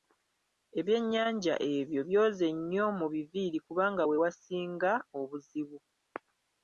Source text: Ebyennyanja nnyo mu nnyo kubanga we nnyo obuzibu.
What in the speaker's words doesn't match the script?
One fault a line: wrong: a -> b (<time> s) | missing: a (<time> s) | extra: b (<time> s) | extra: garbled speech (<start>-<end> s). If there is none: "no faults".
extra: ebyo byoze (1.8 s)
wrong: nnyo -> biviiri (3.1 s)
wrong: nnyo -> wasinga (4.2 s)